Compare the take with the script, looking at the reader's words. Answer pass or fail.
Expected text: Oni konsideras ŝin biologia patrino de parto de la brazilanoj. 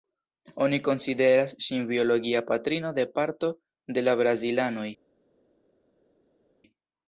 pass